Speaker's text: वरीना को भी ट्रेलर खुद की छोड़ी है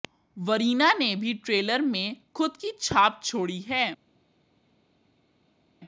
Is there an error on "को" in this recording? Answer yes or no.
yes